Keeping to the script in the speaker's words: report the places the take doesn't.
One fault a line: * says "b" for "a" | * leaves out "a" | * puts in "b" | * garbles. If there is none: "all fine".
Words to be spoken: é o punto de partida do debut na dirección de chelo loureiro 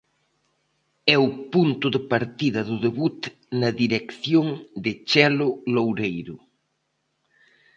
all fine